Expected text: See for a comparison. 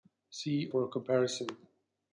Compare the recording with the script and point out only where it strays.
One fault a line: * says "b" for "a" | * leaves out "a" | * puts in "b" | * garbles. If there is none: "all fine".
all fine